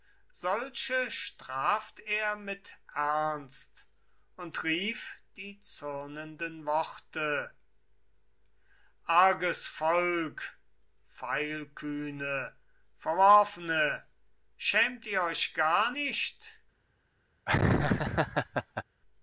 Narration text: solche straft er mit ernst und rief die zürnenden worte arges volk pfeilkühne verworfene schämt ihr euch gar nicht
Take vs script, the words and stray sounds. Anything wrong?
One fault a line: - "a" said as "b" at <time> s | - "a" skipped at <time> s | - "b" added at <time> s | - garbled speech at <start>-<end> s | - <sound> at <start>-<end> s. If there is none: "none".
- laugh at 17.5-18.8 s